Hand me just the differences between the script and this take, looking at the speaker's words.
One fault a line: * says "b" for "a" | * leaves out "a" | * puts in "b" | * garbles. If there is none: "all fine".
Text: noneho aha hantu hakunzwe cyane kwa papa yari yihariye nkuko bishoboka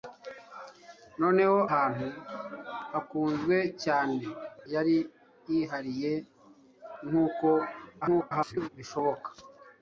* leaves out "aha"
* leaves out "kwa papa"
* garbles